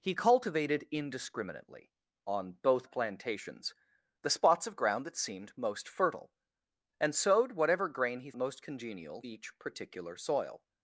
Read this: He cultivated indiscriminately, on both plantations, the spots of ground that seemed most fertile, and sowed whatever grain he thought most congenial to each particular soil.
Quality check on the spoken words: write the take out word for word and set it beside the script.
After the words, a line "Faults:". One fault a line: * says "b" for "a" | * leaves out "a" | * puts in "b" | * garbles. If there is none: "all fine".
He cultivated indiscriminately, on both plantations, the spots of ground that seemed most fertile, and sowed whatever grain he most congenial each particular soil.
Faults:
* leaves out "thought"
* leaves out "to"